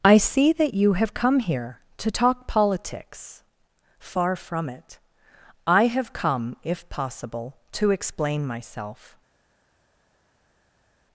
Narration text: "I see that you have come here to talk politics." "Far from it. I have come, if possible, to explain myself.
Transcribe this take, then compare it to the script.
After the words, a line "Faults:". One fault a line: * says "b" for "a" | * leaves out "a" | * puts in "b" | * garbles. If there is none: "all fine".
"I see that you have come here to talk politics." "Far from it. I have come, if possible, to explain myself.
Faults:
all fine